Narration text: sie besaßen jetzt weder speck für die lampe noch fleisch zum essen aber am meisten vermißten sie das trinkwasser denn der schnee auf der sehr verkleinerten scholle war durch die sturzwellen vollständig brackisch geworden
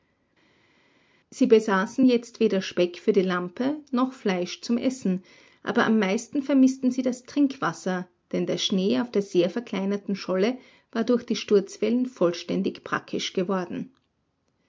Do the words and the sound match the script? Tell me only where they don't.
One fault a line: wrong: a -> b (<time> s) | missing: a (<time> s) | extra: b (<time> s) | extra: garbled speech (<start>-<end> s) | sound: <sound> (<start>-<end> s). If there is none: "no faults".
no faults